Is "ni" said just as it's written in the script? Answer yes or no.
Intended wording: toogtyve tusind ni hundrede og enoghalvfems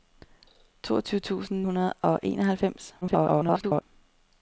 no